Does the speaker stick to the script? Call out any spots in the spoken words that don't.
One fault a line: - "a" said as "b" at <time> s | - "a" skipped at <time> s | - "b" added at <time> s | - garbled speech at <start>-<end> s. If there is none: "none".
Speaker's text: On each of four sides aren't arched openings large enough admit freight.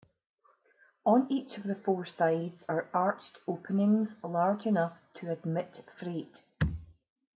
- "the" added at 1.6 s
- "aren't" said as "are" at 2.7 s
- "to" added at 5.1 s